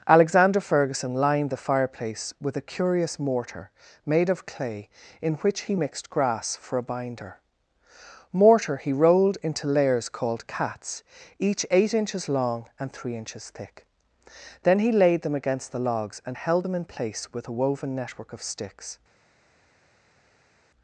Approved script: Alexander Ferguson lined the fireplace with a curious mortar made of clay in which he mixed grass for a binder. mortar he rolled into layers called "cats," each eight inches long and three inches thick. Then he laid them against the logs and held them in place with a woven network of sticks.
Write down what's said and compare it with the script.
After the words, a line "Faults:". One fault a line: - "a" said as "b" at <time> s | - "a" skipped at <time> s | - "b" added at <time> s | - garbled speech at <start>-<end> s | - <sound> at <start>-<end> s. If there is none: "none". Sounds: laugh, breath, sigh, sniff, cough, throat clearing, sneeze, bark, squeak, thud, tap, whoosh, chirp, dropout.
Alexander Ferguson lined the fireplace with a curious mortar made of clay in which he mixed grass for a binder. mortar he rolled into layers called "cats," each eight inches long and three inches thick. Then he laid them against the logs and held them in place with a woven network of sticks.
Faults:
none